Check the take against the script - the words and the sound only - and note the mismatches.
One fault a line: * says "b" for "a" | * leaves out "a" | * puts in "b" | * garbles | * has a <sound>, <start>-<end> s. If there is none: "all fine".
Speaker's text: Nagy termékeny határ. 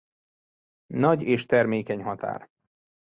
* puts in "és"